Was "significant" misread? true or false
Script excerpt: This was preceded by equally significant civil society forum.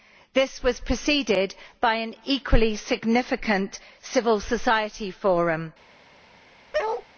false